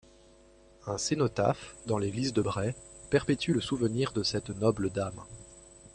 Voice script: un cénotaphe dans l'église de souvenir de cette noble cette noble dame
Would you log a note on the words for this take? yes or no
yes